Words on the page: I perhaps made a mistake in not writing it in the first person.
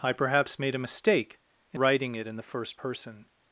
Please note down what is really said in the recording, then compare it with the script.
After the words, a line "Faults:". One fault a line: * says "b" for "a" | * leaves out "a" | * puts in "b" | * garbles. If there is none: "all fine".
I perhaps made a mistake in writing it in the first person.
Faults:
* leaves out "not"